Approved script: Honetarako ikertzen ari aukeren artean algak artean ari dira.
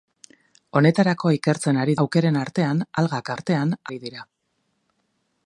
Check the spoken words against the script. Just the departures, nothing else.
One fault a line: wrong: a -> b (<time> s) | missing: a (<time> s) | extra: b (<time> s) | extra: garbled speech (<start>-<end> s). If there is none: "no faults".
no faults